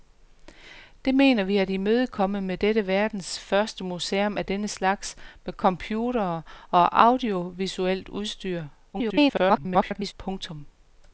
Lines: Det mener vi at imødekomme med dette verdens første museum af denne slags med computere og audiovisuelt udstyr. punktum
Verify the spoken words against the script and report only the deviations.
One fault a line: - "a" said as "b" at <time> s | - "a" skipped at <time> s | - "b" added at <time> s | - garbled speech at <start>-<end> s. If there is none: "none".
- garbled speech at 8.9-10.1 s